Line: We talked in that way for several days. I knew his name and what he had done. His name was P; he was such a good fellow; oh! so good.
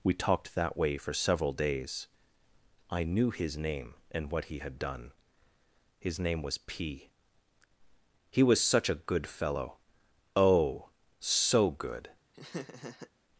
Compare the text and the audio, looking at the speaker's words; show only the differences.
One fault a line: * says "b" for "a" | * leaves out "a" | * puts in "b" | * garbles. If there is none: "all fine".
* leaves out "in"